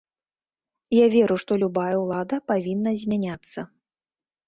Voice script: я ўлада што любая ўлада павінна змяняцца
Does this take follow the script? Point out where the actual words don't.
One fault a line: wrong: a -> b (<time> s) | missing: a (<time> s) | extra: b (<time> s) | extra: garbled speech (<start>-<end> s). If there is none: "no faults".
wrong: ўлада -> веру (1.1 s)